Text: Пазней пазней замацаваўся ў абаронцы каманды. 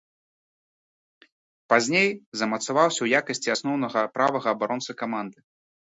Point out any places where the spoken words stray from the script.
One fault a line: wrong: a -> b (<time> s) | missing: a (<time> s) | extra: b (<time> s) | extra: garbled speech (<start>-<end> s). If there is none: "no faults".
missing: пазней (2.1 s)
extra: якасці асноўнага правага (3.2 s)